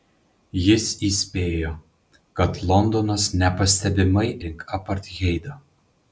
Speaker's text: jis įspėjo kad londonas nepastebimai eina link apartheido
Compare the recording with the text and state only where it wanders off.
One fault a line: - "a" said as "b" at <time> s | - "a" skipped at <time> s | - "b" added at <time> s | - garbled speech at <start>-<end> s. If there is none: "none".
- "eina" skipped at 4.3 s